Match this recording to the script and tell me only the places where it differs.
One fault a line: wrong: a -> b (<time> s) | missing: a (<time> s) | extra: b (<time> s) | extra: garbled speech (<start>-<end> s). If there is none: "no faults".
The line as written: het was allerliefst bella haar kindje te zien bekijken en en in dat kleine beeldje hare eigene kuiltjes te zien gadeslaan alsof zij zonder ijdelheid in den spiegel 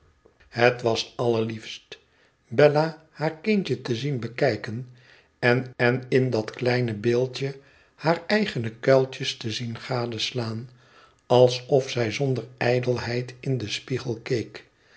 no faults